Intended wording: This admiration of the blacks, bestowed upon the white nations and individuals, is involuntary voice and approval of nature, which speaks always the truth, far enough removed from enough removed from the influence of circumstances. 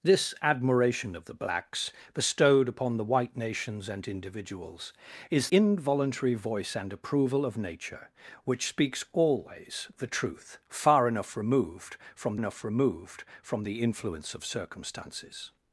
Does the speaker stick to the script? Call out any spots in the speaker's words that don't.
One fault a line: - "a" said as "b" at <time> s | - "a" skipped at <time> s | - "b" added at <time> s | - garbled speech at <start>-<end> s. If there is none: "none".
none